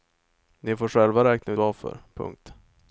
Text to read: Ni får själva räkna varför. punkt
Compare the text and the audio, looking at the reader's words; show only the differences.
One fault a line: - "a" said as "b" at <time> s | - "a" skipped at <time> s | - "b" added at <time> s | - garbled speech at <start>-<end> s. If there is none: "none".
none